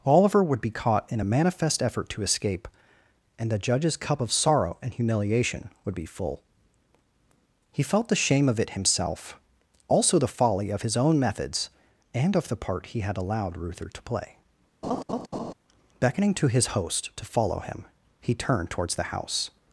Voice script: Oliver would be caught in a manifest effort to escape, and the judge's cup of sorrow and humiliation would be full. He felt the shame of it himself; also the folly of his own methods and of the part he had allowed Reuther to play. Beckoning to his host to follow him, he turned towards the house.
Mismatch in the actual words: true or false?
false